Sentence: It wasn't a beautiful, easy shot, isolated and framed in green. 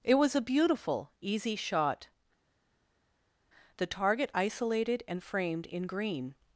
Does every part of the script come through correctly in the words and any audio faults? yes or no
no